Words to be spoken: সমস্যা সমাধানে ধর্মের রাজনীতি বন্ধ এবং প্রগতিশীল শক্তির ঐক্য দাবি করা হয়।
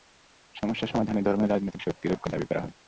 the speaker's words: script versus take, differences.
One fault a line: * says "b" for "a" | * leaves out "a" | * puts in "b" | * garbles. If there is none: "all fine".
* leaves out "বন্ধ এবং প্রগতিশীল"